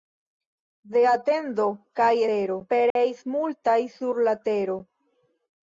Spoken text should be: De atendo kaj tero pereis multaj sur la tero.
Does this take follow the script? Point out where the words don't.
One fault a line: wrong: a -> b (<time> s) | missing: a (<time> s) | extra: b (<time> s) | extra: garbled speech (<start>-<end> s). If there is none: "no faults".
no faults